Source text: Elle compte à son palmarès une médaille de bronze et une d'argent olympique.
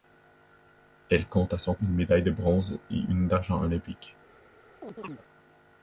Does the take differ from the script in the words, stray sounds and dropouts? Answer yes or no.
yes